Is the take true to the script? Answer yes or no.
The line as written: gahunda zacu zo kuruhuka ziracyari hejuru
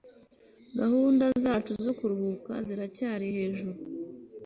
yes